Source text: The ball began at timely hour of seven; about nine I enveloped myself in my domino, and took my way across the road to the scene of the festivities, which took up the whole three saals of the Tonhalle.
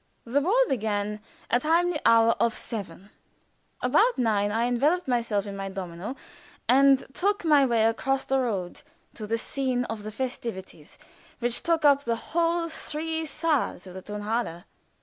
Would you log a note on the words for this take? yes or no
no